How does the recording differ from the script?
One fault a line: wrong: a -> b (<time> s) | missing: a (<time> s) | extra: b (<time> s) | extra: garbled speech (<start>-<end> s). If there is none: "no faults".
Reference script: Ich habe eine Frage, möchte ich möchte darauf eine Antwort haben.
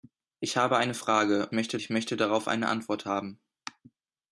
no faults